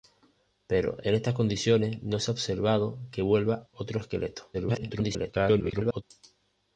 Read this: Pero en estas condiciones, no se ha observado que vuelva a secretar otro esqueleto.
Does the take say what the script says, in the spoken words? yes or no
no